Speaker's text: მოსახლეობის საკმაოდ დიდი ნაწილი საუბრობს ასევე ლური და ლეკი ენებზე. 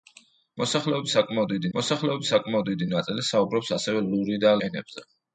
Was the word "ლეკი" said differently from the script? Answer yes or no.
yes